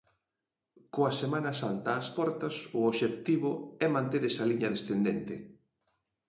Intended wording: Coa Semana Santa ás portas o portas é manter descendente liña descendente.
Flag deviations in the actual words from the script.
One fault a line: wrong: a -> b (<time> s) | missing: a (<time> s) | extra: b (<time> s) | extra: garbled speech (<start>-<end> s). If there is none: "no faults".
wrong: portas -> obxectivo (2.9 s)
wrong: descendente -> esa (4.3 s)